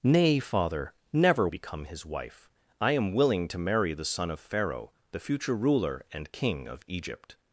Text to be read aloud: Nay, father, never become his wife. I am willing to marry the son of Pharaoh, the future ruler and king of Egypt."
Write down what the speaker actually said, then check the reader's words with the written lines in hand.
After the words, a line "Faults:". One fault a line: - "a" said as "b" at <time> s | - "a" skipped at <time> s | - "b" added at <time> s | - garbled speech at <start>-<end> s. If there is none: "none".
Nay, father, never become his wife. I am willing to marry the son of Pharaoh, the future ruler and king of Egypt."
Faults:
none